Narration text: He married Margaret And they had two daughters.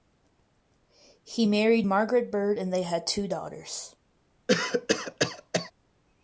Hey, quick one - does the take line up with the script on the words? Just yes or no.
no